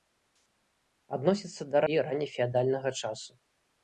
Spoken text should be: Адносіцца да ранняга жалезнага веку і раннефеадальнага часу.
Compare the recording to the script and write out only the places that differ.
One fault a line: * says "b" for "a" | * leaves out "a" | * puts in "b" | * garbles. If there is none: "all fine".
* leaves out "ранняга жалезнага веку"